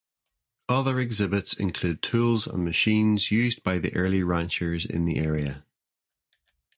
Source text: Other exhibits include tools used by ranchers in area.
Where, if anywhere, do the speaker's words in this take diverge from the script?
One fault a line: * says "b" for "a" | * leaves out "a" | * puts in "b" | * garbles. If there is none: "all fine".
* puts in "and machines"
* puts in "the early"
* puts in "the"